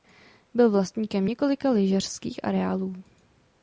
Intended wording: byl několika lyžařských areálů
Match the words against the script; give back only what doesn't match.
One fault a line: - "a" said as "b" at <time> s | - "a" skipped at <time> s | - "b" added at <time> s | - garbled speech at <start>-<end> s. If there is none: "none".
- "vlastníkem" added at 0.7 s